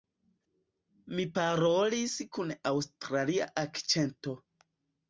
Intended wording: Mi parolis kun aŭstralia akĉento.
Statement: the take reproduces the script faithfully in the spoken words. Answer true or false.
true